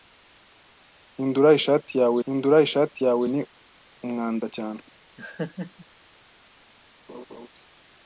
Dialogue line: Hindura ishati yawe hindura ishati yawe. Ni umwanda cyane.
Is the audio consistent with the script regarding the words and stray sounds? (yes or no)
no